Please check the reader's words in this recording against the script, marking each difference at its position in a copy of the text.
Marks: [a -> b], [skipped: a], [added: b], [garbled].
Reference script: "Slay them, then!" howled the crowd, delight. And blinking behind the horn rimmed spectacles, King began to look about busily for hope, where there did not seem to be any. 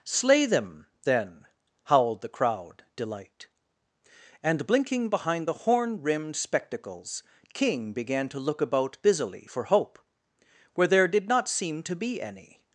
"Slay them, then!" howled the crowd, delight. And blinking behind the horn rimmed spectacles, King began to look about busily for hope, where there did not seem to be any.